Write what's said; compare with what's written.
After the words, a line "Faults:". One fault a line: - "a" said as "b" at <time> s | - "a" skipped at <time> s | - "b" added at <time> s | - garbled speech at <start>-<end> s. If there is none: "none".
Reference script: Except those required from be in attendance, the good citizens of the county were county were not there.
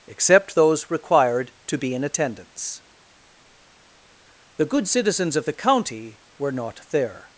Except those required to be in attendance, the good citizens of the county were not there.
Faults:
- "from" said as "to" at 1.7 s
- "county were" skipped at 6.5 s